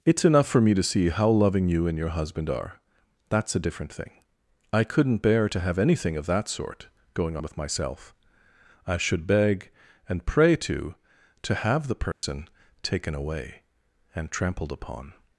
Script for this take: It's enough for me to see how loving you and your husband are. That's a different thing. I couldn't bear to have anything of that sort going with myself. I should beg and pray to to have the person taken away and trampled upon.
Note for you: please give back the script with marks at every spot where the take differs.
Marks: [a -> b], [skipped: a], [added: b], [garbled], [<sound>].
It's enough for me to see how loving you and your husband are. That's a different thing. I couldn't bear to have anything of that sort going with myself. I should beg and pray to to have the person [dropout] taken away and trampled upon.